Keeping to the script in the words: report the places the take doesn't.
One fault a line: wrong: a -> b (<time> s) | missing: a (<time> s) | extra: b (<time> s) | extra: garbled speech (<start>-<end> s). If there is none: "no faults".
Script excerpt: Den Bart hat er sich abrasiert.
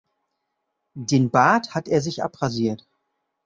no faults